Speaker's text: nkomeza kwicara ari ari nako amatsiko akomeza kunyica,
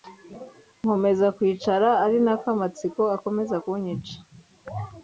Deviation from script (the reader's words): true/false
true